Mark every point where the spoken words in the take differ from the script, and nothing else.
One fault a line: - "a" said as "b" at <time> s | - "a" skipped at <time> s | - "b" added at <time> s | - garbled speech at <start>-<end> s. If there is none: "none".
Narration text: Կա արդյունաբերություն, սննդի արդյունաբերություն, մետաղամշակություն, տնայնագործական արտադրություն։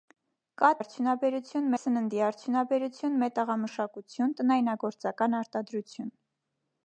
none